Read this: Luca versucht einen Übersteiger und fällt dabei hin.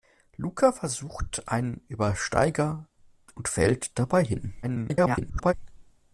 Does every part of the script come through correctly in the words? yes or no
no